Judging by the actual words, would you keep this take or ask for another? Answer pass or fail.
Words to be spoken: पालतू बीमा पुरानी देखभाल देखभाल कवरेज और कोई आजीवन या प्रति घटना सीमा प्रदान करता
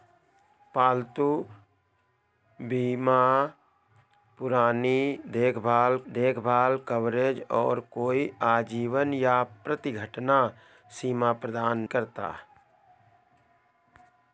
pass